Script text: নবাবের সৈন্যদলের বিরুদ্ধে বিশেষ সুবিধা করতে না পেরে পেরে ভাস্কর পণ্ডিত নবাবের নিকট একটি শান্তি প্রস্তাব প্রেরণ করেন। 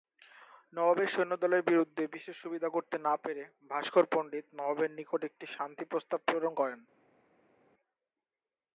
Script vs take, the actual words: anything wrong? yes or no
yes